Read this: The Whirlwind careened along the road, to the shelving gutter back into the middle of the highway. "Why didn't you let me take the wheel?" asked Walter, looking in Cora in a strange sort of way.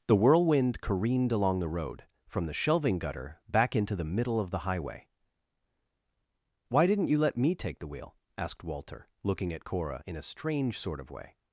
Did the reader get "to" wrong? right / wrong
wrong